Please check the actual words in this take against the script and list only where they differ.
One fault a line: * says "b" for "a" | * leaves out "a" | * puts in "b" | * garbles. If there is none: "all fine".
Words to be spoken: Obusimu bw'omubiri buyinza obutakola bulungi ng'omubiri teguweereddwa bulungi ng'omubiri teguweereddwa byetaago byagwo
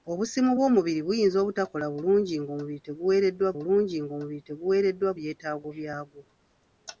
all fine